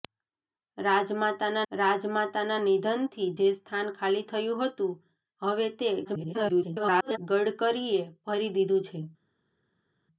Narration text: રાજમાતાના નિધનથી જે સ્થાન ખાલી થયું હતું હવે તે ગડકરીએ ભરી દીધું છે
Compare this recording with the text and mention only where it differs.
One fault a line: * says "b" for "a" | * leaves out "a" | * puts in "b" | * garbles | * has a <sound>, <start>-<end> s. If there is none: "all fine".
* puts in "રાજમાતાના"
* garbles